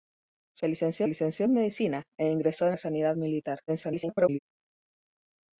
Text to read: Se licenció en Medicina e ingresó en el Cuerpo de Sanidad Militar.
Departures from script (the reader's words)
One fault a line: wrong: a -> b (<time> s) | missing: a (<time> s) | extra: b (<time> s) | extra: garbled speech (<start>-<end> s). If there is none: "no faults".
extra: licenció (1.1 s)
missing: el Cuerpo (2.8 s)
extra: garbled speech (3.7-4.4 s)